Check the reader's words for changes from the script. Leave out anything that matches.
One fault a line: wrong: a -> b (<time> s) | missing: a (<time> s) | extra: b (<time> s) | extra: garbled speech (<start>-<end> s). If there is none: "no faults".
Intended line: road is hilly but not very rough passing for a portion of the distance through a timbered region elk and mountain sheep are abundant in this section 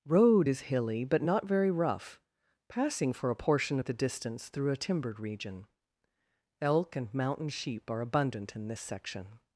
no faults